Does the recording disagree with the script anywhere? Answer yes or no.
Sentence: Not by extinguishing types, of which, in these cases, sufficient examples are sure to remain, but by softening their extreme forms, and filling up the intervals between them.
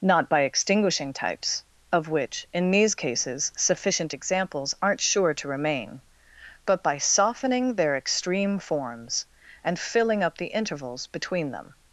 yes